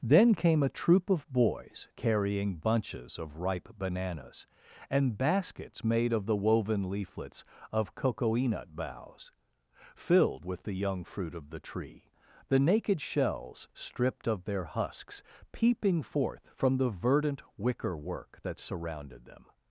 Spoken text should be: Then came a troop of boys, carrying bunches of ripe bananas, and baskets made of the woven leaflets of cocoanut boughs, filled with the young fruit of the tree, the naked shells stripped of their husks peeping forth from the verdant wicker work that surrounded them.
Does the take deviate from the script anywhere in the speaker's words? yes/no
no